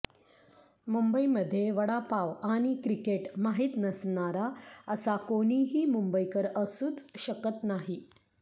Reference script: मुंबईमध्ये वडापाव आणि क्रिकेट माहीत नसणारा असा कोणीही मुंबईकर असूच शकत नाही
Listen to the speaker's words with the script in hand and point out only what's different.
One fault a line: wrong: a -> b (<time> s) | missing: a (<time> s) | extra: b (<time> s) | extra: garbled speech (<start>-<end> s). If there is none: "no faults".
no faults